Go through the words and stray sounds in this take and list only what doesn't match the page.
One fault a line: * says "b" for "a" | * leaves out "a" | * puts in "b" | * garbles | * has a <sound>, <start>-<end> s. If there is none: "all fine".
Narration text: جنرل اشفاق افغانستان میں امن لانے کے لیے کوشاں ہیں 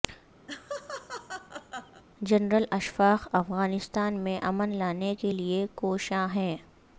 * has a laugh, 0.5-2.0 s